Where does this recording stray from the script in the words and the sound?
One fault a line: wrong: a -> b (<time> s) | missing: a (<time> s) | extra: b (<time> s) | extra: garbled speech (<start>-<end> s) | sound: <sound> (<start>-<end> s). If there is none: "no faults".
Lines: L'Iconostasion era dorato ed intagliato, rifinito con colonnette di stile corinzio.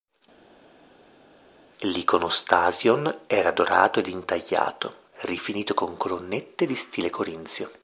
no faults